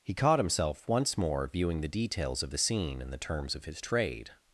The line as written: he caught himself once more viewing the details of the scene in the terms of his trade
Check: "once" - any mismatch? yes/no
no